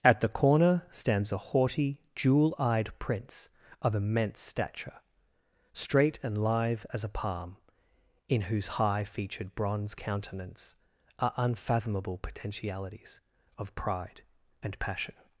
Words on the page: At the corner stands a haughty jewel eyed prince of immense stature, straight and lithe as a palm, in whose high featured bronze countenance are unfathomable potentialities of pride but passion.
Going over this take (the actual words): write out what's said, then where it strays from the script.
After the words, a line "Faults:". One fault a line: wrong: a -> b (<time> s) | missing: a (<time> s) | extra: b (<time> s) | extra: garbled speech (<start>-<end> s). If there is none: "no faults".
At the corner stands a haughty jewel eyed prince of immense stature, straight and lithe as a palm, in whose high featured bronze countenance are unfathomable potentialities of pride and passion.
Faults:
wrong: but -> and (14.6 s)